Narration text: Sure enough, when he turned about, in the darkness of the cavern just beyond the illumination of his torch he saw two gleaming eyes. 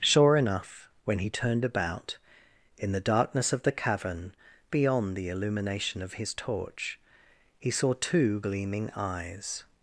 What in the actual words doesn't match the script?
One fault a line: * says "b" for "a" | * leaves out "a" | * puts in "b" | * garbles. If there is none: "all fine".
* leaves out "just"